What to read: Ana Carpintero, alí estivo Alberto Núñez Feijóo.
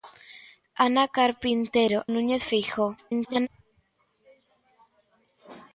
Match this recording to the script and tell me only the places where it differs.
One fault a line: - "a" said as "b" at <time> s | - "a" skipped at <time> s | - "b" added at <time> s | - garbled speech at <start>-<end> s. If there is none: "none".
- "alí estivo Alberto" skipped at 2.0 s
- garbled speech at 3.0-3.5 s